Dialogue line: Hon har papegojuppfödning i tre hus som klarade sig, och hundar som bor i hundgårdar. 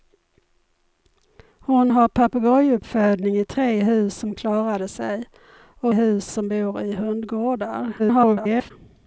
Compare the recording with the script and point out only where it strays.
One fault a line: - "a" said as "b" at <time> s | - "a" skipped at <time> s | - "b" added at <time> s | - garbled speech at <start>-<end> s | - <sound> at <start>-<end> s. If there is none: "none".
- "hundar" said as "hus" at 5.9 s
- garbled speech at 8.0-8.7 s